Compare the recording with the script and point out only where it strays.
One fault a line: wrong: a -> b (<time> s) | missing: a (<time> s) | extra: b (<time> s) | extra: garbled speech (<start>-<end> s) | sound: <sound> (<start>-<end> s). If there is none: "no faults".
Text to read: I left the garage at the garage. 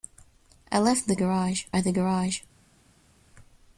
no faults